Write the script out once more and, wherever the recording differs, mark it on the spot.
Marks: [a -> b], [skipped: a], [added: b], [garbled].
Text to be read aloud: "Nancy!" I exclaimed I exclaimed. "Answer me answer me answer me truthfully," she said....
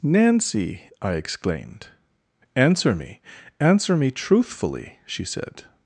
"Nancy!" I exclaimed [skipped: I exclaimed. "Answer me] answer me answer me truthfully," she said....